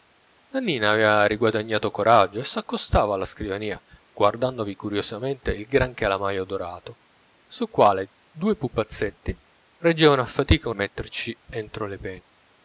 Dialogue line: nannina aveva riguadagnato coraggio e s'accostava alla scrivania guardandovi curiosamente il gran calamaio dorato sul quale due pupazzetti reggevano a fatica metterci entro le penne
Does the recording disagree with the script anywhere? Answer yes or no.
no